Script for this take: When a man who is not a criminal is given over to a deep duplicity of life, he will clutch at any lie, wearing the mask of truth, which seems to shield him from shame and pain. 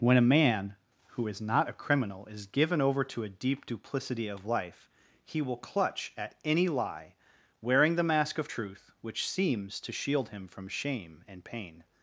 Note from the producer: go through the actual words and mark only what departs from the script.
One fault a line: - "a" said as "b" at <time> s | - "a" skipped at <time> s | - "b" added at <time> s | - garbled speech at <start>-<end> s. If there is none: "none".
none